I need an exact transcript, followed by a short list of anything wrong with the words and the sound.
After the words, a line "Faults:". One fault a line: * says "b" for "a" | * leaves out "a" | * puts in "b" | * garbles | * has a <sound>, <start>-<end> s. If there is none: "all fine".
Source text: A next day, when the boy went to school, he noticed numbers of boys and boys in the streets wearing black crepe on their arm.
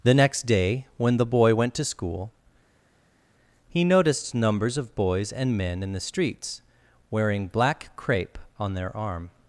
The next day, when the boy went to school, he noticed numbers of boys and men in the streets wearing black crepe on their arm.
Faults:
* says "The" for "A"
* says "men" for "boys"